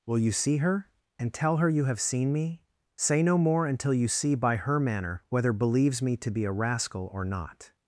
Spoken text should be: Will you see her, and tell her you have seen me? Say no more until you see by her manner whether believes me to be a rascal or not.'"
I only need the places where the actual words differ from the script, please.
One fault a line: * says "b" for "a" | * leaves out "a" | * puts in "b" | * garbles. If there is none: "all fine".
all fine